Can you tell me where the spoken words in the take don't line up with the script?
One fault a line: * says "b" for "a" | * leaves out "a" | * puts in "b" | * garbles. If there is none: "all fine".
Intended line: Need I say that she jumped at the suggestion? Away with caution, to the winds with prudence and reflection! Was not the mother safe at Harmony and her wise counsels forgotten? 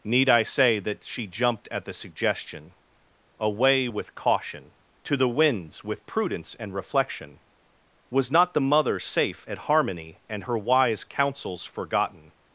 all fine